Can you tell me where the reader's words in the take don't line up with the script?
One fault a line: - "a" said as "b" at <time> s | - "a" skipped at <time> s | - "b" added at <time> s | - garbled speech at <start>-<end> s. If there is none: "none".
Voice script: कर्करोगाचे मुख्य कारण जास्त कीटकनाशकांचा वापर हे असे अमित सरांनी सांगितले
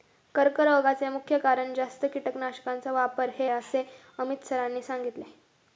none